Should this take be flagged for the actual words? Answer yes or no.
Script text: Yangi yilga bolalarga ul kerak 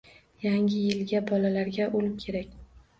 no